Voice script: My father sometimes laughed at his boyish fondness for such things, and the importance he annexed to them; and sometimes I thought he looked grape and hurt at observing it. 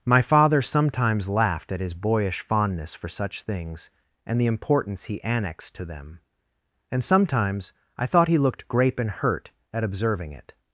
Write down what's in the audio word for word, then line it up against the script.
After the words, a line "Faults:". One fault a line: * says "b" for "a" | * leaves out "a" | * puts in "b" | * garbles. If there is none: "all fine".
My father sometimes laughed at his boyish fondness for such things, and the importance he annexed to them; and sometimes I thought he looked grape and hurt at observing it.
Faults:
all fine